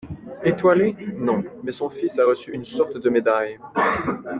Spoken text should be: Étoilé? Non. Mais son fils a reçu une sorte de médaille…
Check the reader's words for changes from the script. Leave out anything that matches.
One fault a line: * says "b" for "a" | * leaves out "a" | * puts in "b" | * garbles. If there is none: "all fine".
all fine